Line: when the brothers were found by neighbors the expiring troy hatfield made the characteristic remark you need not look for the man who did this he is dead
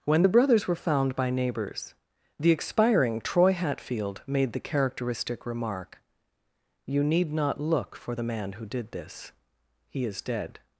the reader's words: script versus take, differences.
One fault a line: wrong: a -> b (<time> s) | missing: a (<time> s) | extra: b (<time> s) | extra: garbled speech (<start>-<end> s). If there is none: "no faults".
no faults